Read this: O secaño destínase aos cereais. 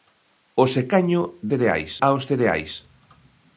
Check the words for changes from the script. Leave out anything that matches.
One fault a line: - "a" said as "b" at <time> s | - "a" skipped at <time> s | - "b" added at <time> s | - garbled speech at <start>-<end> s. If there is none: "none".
- "destínase" said as "cereais" at 1.5 s